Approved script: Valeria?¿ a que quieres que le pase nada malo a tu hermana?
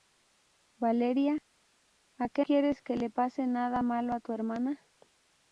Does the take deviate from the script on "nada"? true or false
false